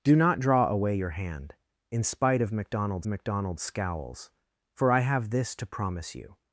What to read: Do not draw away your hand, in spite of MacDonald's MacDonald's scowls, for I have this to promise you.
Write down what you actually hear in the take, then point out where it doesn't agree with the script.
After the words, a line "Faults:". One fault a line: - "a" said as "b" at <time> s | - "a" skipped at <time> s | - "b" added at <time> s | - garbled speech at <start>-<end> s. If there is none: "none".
Do not draw away your hand, in spite of MacDonald's MacDonald's scowls, for I have this to promise you.
Faults:
none